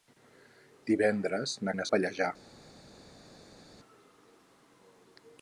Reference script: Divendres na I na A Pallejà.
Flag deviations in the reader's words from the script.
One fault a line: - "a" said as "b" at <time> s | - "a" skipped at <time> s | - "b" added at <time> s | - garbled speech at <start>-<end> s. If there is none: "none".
none